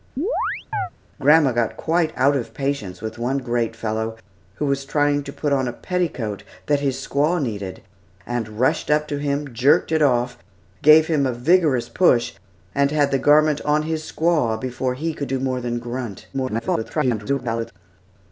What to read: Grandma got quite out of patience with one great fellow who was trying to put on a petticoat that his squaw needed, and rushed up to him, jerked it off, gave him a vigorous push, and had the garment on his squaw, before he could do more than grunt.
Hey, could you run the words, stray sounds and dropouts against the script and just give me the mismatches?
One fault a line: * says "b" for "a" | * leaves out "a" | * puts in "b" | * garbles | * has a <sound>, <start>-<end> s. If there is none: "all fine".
* has a chirp, 0.2-0.9 s
* garbles